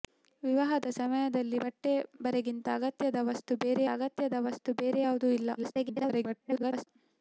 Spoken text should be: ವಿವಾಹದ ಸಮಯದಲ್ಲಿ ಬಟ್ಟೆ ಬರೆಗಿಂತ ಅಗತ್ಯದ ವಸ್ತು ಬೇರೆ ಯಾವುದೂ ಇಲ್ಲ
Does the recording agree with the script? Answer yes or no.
no